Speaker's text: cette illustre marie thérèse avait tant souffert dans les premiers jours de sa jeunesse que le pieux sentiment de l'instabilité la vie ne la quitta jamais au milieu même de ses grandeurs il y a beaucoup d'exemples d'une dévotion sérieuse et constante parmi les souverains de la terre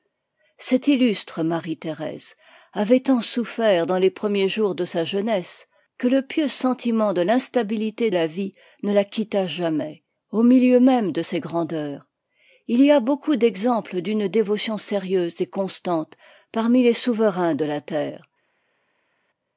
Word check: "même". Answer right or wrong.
right